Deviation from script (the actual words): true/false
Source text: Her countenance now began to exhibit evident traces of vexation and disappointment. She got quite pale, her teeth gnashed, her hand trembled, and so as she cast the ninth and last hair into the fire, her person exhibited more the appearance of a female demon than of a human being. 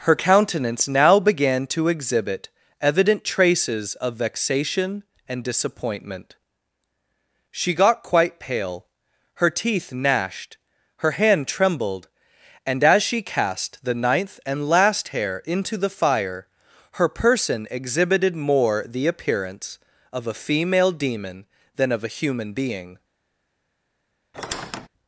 true